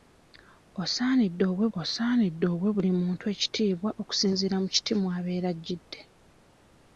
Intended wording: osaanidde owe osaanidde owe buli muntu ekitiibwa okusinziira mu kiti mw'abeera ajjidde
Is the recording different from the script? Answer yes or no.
no